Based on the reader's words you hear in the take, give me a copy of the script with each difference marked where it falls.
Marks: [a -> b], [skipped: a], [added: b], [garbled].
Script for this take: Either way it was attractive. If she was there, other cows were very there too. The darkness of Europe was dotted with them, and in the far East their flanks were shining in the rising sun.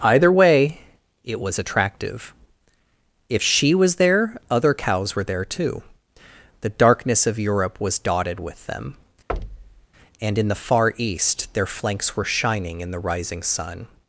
Either way it was attractive. If she was there, other cows were [skipped: very] there too. The darkness of Europe was dotted with them, and in the far East their flanks were shining in the rising sun.